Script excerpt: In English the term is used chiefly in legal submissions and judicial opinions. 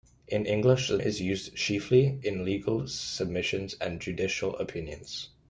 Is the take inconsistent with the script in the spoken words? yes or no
yes